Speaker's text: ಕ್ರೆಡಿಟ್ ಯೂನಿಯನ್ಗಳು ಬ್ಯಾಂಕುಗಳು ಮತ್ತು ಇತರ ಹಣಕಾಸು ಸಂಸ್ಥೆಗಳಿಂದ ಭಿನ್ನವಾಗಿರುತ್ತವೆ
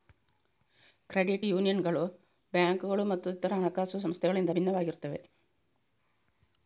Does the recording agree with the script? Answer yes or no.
yes